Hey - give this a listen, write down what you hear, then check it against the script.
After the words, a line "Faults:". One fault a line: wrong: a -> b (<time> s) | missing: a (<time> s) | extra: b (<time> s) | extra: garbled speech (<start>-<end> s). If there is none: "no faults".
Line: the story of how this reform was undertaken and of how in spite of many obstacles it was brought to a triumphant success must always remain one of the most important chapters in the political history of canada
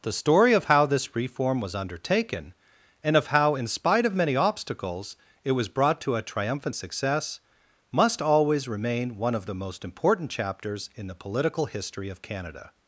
the story of how this reform was undertaken and of how in spite of many obstacles it was brought to a triumphant success must always remain one of the most important chapters in the political history of canada
Faults:
no faults